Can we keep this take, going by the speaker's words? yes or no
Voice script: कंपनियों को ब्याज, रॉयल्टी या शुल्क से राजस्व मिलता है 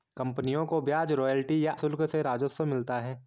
yes